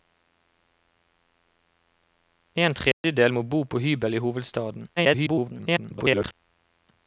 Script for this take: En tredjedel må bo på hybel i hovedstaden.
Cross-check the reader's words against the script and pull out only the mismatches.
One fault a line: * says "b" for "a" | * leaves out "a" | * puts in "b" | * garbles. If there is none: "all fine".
* garbles